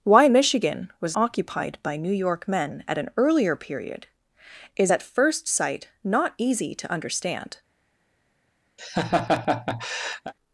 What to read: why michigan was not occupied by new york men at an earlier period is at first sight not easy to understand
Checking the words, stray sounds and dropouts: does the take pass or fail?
fail